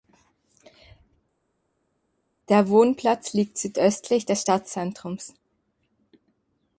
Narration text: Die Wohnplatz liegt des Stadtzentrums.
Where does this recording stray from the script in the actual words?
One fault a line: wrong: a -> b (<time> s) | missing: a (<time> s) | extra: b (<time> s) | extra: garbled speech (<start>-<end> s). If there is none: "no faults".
wrong: Die -> Der (2.5 s)
extra: südöstlich (3.6 s)